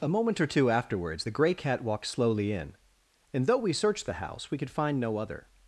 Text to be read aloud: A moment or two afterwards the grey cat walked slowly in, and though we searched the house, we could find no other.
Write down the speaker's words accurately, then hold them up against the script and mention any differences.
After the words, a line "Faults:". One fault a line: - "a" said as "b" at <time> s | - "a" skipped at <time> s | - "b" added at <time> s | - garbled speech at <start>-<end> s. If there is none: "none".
A moment or two afterwards the grey cat walked slowly in, and though we searched the house, we could find no other.
Faults:
none